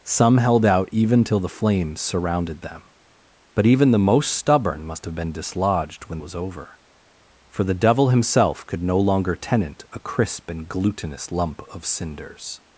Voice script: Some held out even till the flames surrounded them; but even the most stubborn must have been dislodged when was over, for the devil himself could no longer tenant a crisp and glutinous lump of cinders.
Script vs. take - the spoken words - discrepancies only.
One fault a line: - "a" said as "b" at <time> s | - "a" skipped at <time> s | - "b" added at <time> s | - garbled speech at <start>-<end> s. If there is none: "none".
none